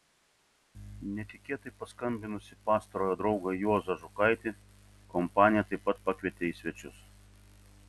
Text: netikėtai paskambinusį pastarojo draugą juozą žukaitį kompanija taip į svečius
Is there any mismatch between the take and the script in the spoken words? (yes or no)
yes